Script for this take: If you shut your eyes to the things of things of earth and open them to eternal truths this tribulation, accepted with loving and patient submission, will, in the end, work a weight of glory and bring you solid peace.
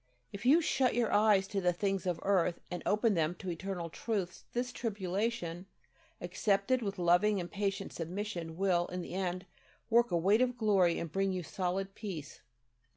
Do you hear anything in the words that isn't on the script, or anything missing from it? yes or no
yes